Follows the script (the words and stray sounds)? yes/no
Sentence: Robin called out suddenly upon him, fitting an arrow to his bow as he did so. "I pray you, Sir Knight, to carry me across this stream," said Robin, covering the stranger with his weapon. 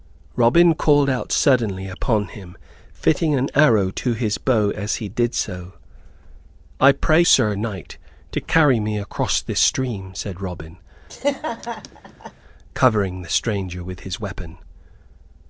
no